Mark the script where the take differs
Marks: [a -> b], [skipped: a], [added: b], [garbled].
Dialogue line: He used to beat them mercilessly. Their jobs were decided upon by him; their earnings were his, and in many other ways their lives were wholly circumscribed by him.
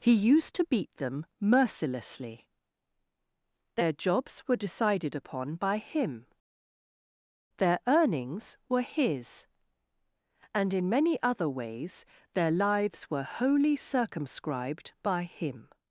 He used to beat them mercilessly. Their jobs were decided upon by him; their earnings were his, and in many other ways their lives were wholly circumscribed by him.